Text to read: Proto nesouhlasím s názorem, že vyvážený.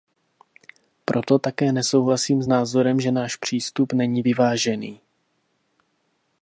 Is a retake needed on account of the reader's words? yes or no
yes